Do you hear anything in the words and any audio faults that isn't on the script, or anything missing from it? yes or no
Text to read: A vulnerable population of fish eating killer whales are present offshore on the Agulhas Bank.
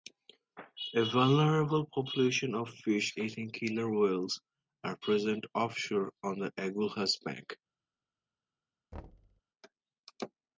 yes